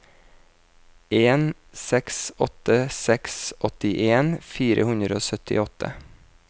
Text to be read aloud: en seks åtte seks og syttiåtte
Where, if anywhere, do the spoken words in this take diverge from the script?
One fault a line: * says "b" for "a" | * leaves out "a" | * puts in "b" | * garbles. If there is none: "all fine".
* puts in "åttien fire hundre"